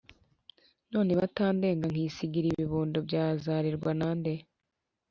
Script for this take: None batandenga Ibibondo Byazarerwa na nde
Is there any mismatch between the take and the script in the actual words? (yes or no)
yes